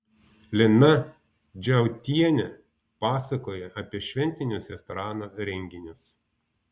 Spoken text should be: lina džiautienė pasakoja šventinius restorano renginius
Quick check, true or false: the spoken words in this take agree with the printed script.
false